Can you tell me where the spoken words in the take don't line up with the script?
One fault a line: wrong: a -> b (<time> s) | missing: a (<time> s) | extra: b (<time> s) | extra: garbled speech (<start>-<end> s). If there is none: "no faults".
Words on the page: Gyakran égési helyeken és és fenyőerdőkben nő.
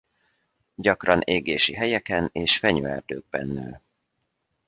missing: és (2.6 s)